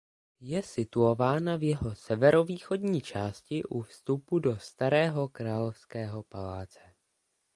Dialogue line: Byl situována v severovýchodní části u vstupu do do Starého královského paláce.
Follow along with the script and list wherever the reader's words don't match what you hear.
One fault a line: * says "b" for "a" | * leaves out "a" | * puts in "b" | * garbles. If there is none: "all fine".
* says "Je" for "Byl"
* puts in "jeho"
* leaves out "do"